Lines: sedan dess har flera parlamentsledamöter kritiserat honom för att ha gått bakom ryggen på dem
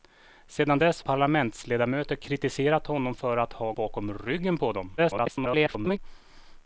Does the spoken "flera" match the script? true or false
false